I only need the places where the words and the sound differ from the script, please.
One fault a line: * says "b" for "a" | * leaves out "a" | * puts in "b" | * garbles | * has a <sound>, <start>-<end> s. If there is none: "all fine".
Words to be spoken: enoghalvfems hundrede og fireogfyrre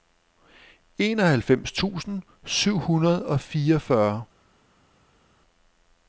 * puts in "tusind syv"